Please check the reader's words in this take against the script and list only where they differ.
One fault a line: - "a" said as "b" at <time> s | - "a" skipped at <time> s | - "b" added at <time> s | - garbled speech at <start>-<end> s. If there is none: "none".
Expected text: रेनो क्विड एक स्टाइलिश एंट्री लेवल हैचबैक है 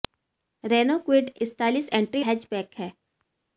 - "एक" skipped at 1.3 s
- "लेवल" skipped at 2.2 s